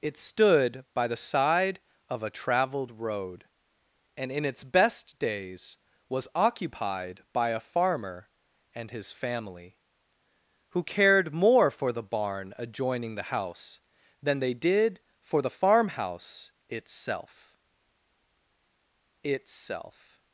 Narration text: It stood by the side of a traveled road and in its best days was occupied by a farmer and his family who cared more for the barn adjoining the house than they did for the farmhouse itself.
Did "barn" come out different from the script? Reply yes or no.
no